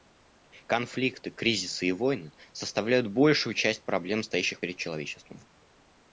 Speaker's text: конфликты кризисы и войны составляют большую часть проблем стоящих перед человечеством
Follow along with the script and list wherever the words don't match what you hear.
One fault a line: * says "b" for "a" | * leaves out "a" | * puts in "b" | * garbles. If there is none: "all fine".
all fine